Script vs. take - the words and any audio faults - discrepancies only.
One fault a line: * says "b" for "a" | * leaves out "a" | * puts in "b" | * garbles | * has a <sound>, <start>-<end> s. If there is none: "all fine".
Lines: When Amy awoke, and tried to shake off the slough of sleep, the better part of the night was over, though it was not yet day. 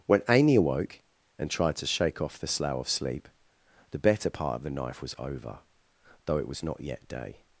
* says "knife" for "night"